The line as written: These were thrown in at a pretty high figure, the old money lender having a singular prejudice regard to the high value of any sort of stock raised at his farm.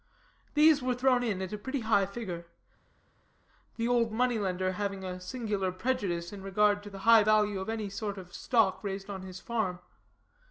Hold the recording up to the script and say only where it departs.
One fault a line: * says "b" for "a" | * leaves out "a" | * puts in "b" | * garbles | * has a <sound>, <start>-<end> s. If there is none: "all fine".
* puts in "in"
* says "on" for "at"